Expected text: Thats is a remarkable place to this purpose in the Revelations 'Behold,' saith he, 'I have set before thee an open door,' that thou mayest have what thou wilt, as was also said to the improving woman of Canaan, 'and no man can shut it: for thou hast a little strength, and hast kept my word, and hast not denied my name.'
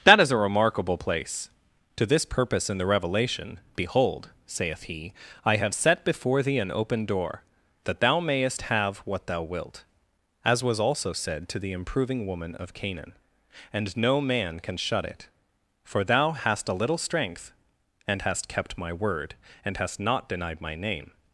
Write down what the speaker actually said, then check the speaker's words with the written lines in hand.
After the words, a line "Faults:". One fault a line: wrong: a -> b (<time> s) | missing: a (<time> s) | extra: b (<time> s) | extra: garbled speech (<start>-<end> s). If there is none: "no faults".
That is a remarkable place to this purpose in the Revelation 'Behold,' saith he, 'I have set before thee an open door,' that thou mayest have what thou wilt, as was also said to the improving woman of Canaan, 'and no man can shut it: for thou hast a little strength, and hast kept my word, and hast not denied my name.'
Faults:
wrong: Thats -> That (0.0 s)
wrong: Revelations -> Revelation (2.9 s)